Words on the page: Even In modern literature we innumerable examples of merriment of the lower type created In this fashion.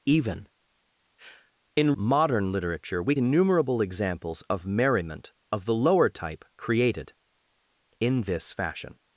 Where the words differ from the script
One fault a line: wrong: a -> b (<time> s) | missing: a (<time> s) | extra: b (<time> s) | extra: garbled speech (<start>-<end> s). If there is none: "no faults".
no faults